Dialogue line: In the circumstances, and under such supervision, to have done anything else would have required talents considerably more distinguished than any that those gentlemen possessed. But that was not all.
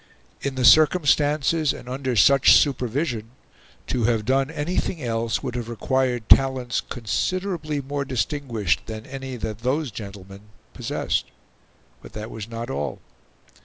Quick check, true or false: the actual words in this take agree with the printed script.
true